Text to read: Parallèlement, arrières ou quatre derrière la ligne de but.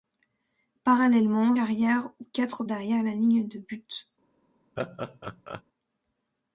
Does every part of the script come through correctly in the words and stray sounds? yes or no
no